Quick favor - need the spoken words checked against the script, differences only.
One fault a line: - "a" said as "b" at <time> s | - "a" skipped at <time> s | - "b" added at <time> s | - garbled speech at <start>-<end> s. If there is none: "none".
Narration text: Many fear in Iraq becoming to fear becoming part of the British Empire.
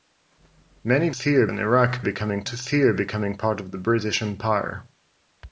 none